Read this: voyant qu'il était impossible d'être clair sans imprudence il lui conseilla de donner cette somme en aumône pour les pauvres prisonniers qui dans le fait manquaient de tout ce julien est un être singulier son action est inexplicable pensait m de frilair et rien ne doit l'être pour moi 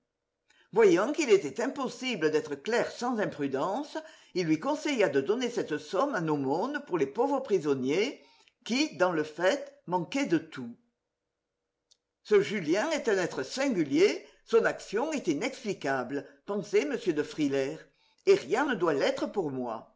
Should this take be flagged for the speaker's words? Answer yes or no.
no